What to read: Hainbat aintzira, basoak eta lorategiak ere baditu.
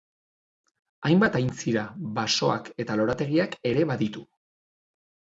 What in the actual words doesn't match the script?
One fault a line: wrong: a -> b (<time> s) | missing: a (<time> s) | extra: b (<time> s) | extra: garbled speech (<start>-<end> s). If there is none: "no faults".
no faults